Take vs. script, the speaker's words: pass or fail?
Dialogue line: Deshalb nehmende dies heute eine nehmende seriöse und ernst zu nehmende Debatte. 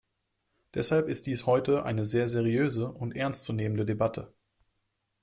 fail